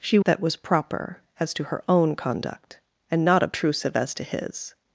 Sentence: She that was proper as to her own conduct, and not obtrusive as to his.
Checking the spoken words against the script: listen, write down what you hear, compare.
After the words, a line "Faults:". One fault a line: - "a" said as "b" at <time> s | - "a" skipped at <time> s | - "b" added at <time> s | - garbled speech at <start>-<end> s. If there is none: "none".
She that was proper as to her own conduct, and not obtrusive as to his.
Faults:
none